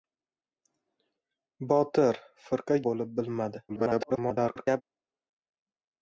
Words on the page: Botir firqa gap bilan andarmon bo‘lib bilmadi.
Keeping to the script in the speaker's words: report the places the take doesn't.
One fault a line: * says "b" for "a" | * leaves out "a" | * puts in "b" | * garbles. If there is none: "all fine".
* leaves out "gap bilan andarmon"
* garbles